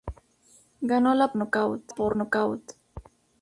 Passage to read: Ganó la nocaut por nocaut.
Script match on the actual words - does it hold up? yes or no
yes